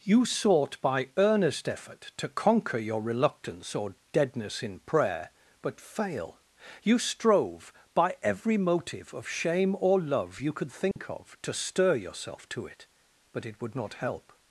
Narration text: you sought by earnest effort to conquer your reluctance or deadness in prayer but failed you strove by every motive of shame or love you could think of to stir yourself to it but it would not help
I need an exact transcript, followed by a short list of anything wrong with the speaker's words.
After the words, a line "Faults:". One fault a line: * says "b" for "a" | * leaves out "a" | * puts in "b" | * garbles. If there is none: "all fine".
you sought by earnest effort to conquer your reluctance or deadness in prayer but fail you strove by every motive of shame or love you could think of to stir yourself to it but it would not help
Faults:
* says "fail" for "failed"